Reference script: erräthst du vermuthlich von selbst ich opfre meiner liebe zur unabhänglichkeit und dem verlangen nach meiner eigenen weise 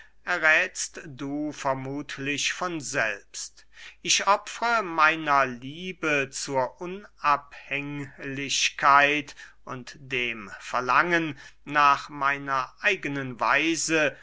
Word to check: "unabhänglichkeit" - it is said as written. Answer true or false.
true